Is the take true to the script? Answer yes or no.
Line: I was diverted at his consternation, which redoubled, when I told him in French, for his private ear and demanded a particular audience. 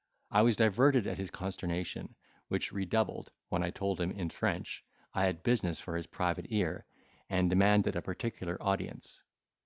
no